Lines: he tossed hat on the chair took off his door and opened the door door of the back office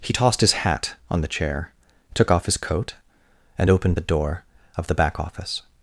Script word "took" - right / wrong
right